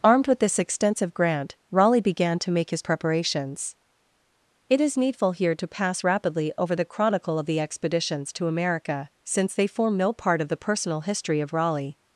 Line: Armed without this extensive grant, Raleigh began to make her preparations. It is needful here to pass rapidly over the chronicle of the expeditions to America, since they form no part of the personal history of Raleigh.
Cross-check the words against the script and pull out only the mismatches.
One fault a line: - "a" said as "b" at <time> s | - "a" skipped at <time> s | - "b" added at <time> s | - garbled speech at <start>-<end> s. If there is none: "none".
- "without" said as "with" at 0.2 s
- "her" said as "his" at 2.7 s